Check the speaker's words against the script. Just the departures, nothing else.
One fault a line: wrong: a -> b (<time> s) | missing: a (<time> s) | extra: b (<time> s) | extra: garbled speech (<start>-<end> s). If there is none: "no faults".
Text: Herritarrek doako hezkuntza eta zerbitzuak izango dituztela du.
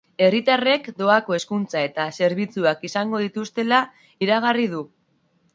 extra: iragarri (4.3 s)